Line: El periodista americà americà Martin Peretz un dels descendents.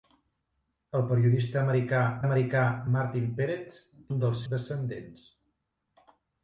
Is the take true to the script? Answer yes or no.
yes